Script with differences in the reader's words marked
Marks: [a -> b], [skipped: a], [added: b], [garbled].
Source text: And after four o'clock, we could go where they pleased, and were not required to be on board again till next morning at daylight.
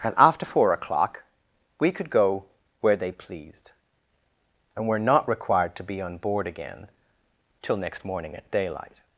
And after four o'clock, we could go where they pleased, and were not required to be on board again till next morning at daylight.